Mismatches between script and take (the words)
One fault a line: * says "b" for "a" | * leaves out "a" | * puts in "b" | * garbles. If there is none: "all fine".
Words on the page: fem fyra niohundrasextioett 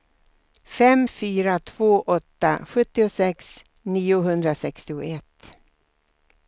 * puts in "två åtta sjuttiosex"